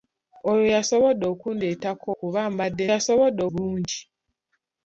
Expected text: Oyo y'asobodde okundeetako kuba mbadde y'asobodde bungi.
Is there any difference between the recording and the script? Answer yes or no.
no